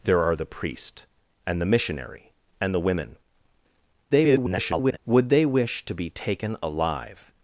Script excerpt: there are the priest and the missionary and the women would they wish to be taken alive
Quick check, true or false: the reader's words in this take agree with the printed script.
false